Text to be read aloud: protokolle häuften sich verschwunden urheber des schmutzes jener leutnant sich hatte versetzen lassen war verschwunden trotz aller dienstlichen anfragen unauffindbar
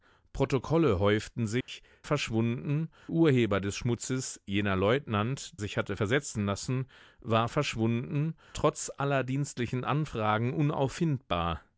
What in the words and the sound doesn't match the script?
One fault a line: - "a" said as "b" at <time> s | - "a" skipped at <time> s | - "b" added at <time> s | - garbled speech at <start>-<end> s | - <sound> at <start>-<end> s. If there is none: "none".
- dropout at 1.6-1.7 s